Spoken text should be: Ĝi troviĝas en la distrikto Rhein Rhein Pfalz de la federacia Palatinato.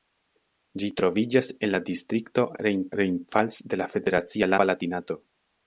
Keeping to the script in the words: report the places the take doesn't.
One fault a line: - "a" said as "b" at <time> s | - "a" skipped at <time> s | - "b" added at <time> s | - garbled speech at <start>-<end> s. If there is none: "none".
none